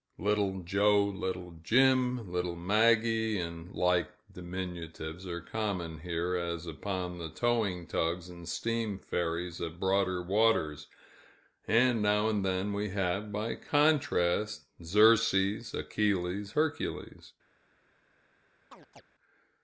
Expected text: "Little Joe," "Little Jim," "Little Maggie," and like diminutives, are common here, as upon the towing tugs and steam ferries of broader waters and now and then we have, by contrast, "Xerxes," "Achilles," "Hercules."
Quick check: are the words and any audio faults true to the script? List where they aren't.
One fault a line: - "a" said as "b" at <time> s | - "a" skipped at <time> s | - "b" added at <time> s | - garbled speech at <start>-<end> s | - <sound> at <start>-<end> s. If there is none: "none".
- chirp at 18.7-19.0 s